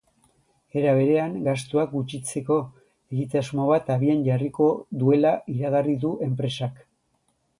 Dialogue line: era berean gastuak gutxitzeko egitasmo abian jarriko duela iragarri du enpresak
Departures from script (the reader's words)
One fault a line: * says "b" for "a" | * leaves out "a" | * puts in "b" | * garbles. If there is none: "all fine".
* puts in "bat"